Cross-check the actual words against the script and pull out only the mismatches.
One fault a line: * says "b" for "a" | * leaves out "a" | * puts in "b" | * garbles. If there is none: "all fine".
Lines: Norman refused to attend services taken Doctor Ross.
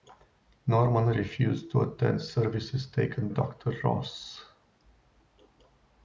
all fine